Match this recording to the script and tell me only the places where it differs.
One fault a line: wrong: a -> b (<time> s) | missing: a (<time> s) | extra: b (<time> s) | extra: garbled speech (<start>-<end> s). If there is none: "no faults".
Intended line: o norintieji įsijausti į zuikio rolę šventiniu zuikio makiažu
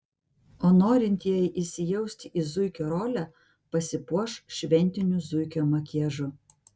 extra: pasipuoš (3.8 s)